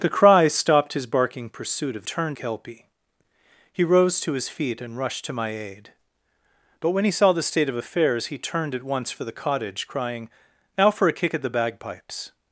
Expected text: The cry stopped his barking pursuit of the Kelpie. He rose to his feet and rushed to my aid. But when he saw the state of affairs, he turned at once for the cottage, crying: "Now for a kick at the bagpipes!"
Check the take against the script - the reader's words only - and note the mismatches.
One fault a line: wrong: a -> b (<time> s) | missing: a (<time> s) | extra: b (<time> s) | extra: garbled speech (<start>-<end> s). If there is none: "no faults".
wrong: the -> turned (2.0 s)